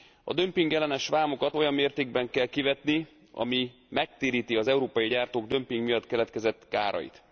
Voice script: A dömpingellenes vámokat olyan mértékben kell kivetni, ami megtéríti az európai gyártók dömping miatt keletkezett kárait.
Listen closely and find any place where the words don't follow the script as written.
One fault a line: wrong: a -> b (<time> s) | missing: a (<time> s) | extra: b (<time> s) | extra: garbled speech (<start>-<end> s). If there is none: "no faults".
no faults